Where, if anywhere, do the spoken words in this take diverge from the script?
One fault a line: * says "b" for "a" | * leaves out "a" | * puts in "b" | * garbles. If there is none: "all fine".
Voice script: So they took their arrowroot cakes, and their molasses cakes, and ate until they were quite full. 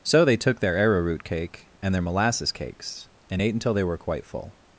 * says "cake" for "cakes"